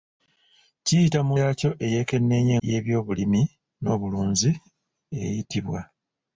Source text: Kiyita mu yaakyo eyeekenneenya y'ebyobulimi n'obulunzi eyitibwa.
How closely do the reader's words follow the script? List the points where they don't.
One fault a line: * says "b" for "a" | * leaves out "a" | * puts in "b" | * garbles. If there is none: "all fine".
all fine